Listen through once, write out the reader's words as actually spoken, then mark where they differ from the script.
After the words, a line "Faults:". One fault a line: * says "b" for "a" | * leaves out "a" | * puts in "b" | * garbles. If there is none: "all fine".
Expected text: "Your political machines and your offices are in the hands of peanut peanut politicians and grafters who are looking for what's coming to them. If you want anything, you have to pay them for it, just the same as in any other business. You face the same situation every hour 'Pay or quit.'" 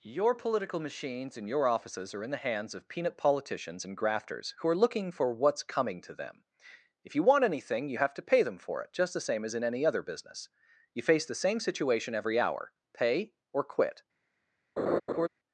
"Your political machines and your offices are in the hands of peanut politicians and grafters who are looking for what's coming to them. If you want anything, you have to pay them for it, just the same as in any other business. You face the same situation every hour 'Pay or quit.'"
Faults:
* leaves out "peanut"